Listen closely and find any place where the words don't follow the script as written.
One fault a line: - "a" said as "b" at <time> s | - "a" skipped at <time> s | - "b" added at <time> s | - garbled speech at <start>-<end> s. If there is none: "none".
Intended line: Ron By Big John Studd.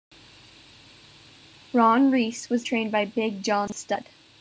- "Reis was trained" added at 2.1 s